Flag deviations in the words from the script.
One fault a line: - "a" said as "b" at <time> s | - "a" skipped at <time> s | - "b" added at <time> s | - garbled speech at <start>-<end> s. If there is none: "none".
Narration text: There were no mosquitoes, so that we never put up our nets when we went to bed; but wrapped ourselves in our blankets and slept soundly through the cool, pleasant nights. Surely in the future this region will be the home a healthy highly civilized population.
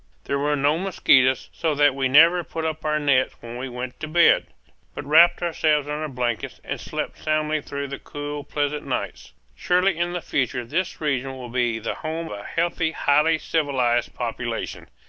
none